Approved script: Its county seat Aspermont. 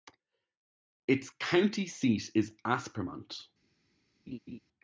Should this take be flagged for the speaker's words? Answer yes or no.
yes